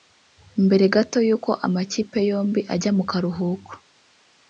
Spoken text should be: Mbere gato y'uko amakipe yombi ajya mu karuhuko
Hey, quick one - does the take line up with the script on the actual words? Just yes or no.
yes